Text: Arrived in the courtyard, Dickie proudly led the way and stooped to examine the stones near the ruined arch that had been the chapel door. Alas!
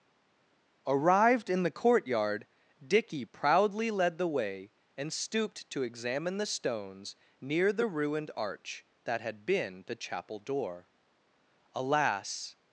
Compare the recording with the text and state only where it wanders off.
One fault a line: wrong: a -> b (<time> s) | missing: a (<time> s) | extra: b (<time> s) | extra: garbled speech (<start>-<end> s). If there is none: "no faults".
no faults